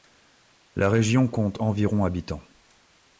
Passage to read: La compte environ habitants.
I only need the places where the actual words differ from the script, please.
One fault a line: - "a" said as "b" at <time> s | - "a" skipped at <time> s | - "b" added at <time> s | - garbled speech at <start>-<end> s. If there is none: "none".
- "région" added at 0.9 s